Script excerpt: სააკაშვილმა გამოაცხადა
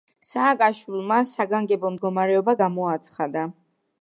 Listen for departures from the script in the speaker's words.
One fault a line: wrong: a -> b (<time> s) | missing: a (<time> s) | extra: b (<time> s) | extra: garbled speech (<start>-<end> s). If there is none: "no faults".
extra: საგანგებო მდგომარეობა (1.3 s)